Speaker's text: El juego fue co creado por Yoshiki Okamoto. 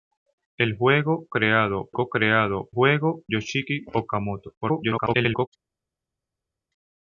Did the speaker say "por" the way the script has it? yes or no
no